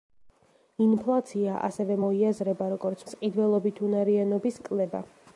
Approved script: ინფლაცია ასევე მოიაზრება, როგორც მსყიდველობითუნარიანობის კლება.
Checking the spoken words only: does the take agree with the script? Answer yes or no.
yes